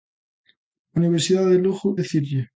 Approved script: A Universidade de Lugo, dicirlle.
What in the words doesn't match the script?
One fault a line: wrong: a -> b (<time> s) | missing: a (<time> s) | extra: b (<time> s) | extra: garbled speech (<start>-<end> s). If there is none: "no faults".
no faults